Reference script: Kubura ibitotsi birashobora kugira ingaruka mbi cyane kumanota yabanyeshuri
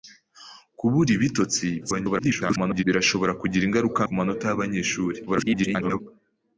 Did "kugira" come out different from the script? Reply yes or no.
no